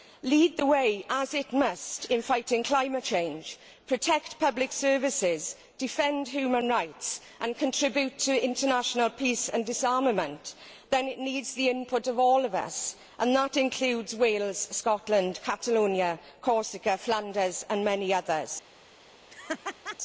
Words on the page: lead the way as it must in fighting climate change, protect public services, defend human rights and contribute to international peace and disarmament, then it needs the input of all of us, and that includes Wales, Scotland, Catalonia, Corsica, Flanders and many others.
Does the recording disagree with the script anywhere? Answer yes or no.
no